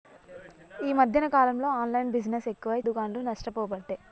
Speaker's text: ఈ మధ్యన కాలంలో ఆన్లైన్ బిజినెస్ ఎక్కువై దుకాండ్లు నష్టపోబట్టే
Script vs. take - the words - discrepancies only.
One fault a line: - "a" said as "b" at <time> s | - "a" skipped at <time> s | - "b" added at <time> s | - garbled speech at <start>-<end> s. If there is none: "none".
none